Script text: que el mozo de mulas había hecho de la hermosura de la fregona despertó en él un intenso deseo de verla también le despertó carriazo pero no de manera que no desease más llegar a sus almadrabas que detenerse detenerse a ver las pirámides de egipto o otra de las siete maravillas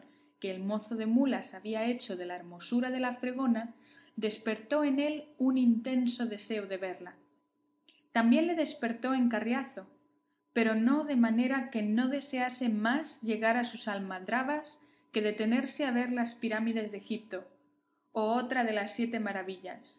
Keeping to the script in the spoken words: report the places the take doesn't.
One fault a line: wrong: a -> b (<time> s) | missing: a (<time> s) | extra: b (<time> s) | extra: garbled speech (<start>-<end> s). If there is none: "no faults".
extra: en (9.1 s)
missing: detenerse (15.8 s)